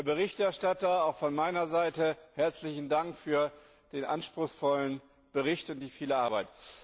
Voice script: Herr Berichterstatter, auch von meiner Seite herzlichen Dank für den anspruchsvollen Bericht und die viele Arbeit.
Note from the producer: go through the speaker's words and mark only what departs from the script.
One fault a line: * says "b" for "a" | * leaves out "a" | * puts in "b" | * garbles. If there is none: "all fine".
all fine